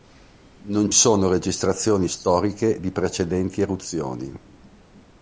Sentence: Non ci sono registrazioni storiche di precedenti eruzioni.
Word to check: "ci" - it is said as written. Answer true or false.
false